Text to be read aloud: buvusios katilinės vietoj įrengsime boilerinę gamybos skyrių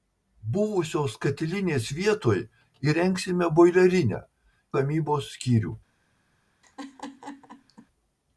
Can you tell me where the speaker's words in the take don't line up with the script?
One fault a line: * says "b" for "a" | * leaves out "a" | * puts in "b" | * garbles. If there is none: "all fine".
all fine